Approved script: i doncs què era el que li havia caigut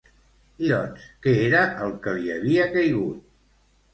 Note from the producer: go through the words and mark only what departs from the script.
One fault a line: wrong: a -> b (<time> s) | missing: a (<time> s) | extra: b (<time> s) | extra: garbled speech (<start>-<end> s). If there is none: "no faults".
no faults